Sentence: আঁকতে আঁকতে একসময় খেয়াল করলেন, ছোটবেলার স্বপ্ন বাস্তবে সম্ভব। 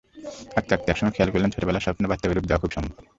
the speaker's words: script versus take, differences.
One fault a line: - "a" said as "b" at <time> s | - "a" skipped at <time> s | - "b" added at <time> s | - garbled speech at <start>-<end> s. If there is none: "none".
- "রূপ দেওয়া খুব" added at 2.3 s